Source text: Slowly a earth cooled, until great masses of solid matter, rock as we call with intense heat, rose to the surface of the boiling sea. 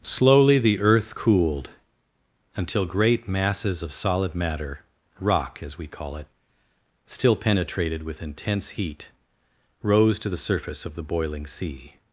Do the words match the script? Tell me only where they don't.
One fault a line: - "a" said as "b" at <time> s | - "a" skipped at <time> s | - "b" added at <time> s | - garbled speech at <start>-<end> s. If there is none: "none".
- "a" said as "the" at 0.6 s
- "it still penetrated" added at 6.1 s